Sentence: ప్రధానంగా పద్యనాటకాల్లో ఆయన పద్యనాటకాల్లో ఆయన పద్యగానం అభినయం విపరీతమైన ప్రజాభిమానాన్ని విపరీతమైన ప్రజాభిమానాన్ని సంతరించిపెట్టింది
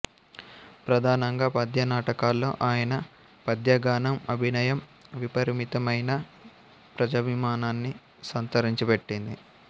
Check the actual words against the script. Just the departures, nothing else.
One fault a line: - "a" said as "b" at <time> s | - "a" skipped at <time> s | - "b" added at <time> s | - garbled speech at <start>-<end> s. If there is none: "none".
- "పద్యనాటకాల్లో ఆయన" skipped at 2.9 s
- "విపరీతమైన ప్రజాభిమానాన్ని" skipped at 7.9 s